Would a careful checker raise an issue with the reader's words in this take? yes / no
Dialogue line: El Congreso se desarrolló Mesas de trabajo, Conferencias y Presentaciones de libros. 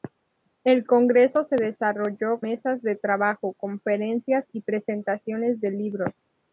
no